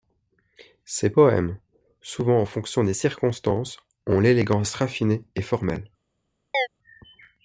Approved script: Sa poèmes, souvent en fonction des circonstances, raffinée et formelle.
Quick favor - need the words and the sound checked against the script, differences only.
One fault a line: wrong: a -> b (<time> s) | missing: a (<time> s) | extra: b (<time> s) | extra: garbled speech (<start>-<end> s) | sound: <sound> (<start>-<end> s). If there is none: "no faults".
wrong: Sa -> Ses (0.8 s)
extra: ont l'élégance (4.1 s)
sound: chirp (6.5-6.7 s)